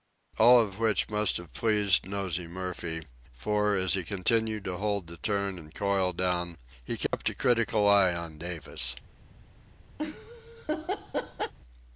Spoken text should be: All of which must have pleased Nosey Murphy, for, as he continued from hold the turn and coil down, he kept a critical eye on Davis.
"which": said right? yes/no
yes